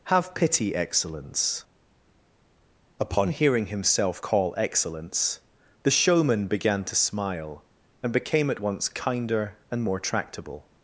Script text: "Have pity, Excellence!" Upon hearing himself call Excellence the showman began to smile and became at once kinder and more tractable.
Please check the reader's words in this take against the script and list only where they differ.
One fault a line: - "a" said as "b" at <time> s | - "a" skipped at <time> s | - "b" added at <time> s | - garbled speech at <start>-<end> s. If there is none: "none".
none